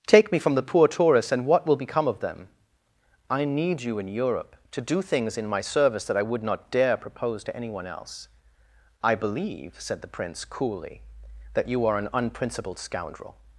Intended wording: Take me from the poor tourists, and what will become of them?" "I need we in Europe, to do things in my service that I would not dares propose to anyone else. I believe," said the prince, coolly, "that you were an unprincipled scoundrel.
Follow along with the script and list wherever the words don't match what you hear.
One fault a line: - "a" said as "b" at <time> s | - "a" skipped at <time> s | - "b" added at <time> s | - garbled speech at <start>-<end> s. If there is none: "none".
- "we" said as "you" at 3.8 s
- "dares" said as "dare" at 6.7 s
- "were" said as "are" at 11.9 s